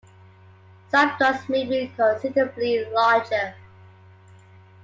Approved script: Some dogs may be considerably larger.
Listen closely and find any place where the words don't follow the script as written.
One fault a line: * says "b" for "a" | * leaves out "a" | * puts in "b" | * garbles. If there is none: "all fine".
all fine